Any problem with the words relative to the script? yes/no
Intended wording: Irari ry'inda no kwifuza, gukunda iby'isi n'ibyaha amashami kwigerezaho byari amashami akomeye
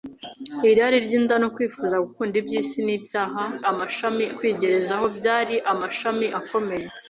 no